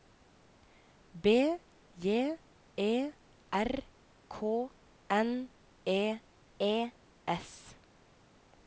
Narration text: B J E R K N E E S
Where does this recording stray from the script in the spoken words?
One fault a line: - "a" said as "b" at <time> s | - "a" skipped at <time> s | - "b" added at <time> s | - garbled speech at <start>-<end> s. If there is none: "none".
none